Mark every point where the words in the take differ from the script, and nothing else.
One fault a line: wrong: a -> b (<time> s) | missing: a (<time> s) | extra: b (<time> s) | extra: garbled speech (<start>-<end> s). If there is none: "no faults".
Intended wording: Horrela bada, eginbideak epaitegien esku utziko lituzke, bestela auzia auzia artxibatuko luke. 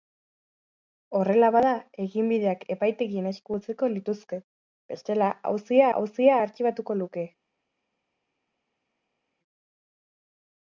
no faults